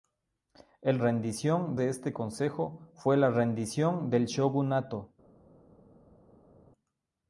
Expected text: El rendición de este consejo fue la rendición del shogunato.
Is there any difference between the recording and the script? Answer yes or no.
no